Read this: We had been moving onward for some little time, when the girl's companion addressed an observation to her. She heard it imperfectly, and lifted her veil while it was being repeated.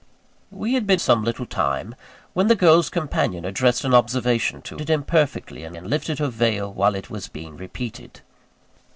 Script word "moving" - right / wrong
wrong